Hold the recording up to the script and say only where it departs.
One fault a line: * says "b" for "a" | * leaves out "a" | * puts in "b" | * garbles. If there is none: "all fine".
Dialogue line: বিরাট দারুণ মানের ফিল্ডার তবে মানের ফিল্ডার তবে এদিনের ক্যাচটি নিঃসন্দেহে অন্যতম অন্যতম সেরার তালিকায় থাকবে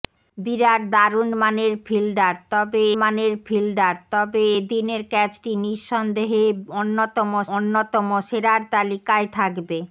all fine